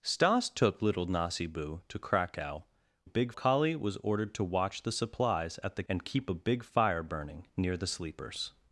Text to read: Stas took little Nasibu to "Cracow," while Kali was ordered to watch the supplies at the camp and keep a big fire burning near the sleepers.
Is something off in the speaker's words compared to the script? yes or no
yes